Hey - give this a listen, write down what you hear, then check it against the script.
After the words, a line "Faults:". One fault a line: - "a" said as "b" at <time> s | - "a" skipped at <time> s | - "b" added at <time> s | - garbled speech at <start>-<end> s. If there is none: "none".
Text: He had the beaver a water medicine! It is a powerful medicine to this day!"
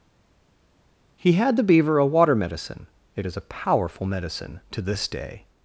He had the beaver a water medicine! It is a powerful medicine to this day!"
Faults:
none